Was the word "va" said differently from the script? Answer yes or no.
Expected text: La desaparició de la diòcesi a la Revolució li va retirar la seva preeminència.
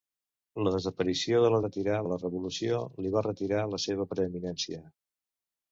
no